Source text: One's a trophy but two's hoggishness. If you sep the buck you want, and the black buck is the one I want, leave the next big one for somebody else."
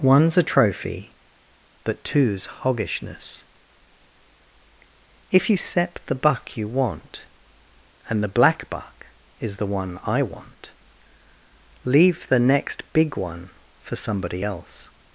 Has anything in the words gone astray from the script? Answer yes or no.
no